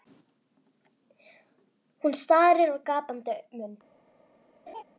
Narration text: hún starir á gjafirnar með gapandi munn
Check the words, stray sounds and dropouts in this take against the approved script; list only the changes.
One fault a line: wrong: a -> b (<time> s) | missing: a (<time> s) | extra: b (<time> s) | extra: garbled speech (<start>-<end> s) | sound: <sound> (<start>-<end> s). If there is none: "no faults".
missing: gjafirnar með (2.8 s)
sound: laugh (4.7-4.8 s)